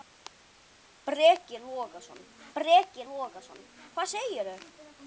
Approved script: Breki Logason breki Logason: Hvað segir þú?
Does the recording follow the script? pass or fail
pass